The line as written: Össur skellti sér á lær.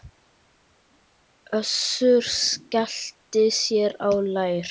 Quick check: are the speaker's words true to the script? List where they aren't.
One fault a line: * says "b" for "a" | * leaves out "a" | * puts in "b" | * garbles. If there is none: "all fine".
all fine